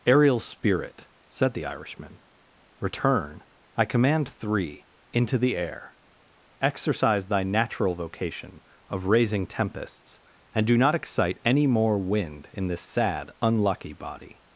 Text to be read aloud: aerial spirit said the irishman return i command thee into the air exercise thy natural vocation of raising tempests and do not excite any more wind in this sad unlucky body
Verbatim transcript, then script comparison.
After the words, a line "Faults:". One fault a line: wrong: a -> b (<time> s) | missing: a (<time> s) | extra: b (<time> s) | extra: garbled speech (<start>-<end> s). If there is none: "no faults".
aerial spirit said the irishman return i command three into the air exercise thy natural vocation of raising tempests and do not excite any more wind in this sad unlucky body
Faults:
wrong: thee -> three (4.3 s)